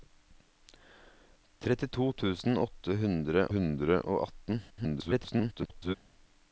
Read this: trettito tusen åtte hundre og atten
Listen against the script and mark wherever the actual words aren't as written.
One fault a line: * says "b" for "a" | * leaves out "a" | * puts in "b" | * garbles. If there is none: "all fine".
* puts in "hundre"
* garbles